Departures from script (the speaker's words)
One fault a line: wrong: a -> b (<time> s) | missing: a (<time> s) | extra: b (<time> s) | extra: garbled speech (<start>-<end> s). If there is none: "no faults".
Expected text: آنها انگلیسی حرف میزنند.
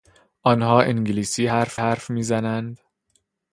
extra: حرف (1.7 s)